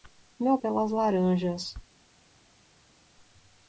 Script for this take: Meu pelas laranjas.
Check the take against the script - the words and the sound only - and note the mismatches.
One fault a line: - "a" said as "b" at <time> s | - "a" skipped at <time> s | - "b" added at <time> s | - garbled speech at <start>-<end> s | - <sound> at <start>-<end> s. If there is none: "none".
none